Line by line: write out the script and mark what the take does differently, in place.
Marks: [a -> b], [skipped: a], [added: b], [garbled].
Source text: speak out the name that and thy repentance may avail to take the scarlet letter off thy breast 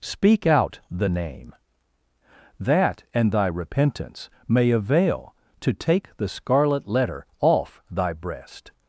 speak out the name that and thy repentance may avail to take the scarlet letter off thy breast